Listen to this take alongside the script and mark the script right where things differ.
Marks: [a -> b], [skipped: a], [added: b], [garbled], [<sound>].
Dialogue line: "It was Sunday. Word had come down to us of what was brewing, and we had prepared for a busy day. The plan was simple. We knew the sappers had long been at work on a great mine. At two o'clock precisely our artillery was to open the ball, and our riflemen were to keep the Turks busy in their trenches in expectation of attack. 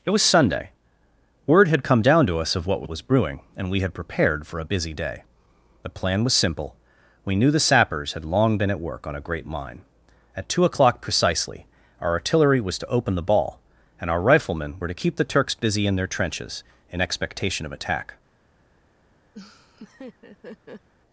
"It was Sunday. Word had come down to us of what was brewing, and we had prepared for a busy day. The plan was simple. We knew the sappers had long been at work on a great mine. At two o'clock precisely our artillery was to open the ball, and our riflemen were to keep the Turks busy in their trenches in expectation of attack. [laugh]